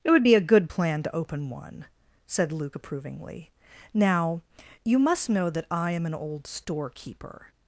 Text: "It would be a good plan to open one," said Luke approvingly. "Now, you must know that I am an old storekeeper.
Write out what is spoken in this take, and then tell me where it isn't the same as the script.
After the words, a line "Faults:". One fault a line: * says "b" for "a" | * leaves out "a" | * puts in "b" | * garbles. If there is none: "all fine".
"It would be a good plan to open one," said Luke approvingly. "Now, you must know that I am an old storekeeper.
Faults:
all fine